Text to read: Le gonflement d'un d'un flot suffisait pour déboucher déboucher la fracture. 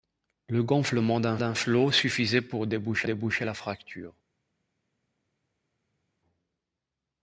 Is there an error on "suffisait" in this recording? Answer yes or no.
no